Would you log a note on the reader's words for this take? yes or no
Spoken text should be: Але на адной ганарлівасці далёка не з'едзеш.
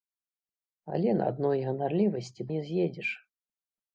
yes